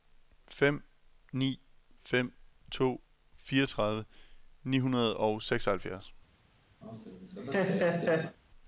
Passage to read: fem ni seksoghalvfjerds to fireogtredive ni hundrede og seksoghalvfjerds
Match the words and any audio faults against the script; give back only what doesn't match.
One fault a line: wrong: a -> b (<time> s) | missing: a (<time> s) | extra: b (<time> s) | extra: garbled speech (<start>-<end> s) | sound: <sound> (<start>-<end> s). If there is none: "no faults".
wrong: seksoghalvfjerds -> fem (2.0 s)
sound: laugh (6.8-8.4 s)